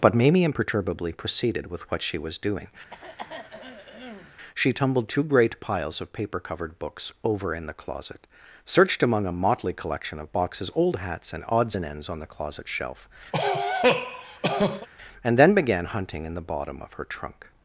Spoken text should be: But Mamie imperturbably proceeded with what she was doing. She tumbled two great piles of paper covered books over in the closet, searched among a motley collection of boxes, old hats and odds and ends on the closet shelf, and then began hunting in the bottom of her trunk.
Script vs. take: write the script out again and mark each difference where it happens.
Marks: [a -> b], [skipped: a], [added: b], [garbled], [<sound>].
But Mamie imperturbably proceeded with what she was doing. [throat clearing] She tumbled two great piles of paper covered books over in the closet, searched among a motley collection of boxes, old hats and odds and ends on the closet shelf, [cough] and then began hunting in the bottom of her trunk.